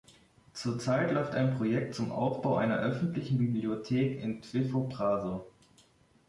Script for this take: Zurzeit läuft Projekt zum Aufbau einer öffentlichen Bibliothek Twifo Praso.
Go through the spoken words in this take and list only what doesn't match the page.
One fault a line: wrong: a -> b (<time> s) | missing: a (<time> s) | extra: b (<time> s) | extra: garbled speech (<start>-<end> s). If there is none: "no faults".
extra: ein (1.4 s)
extra: in (4.2 s)